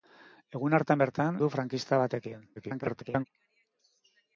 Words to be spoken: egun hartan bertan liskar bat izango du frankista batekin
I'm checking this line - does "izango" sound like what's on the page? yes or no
no